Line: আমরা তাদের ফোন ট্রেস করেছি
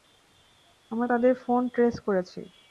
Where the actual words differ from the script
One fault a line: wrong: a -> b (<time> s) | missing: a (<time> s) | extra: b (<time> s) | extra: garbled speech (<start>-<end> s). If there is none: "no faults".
no faults